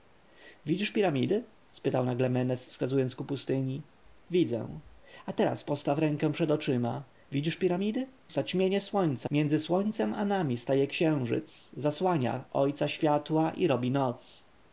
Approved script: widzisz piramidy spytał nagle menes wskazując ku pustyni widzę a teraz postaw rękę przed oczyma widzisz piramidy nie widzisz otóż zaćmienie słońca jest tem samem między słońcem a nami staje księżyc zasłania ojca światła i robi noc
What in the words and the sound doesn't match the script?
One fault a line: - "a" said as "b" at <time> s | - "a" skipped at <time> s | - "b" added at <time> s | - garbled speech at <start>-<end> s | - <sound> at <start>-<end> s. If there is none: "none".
- "nie widzisz otóż" skipped at 8.1 s
- "jest tem samem" skipped at 9.3 s